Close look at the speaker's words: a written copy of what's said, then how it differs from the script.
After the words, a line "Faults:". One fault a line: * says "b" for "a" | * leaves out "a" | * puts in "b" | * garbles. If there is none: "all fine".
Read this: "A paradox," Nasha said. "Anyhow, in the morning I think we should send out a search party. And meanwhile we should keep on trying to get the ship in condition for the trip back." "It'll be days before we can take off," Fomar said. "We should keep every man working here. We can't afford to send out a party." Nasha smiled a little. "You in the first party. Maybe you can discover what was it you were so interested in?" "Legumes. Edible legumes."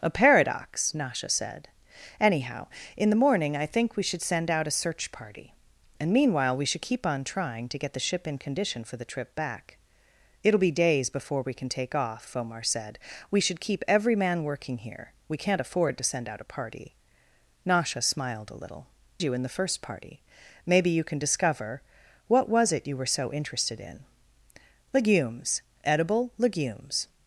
"A paradox," Nasha said. "Anyhow, in the morning I think we should send out a search party. And meanwhile we should keep on trying to get the ship in condition for the trip back." "It'll be days before we can take off," Fomar said. "We should keep every man working here. We can't afford to send out a party." Nasha smiled a little. "You in the first party. Maybe you can discover what was it you were so interested in?" "Legumes. Edible legumes."
Faults:
all fine